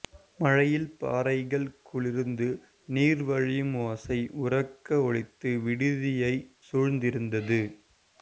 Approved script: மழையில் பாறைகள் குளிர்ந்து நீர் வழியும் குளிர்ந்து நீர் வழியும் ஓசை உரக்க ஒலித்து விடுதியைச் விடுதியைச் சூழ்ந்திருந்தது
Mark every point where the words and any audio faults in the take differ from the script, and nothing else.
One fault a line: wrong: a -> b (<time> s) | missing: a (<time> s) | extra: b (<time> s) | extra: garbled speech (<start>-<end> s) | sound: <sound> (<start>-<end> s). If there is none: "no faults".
missing: குளிர்ந்து நீர் வழியும் (3.8 s)
missing: விடுதியைச் (6.4 s)